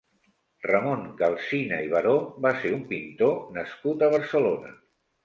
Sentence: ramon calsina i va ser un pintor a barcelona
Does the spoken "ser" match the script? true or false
true